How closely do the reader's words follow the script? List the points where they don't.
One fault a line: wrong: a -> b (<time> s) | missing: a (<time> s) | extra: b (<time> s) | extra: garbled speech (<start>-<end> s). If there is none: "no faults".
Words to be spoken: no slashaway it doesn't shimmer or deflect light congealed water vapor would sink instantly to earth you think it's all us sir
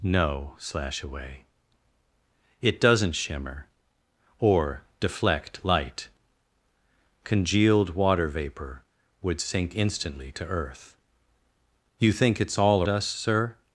no faults